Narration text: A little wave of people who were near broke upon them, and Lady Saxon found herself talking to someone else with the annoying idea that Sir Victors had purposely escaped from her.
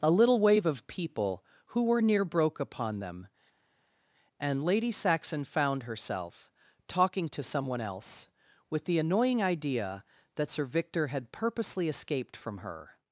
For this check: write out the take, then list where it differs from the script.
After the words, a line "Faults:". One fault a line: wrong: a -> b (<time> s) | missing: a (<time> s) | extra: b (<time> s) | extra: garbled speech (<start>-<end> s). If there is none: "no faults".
A little wave of people who were near broke upon them, and Lady Saxon found herself talking to someone else with the annoying idea that Sir Victor had purposely escaped from her.
Faults:
wrong: Victors -> Victor (10.6 s)